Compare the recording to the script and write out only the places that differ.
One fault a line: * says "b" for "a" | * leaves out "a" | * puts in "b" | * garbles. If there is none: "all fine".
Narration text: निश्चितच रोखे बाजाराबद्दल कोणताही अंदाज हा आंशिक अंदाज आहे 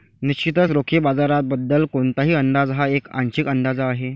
* puts in "एक"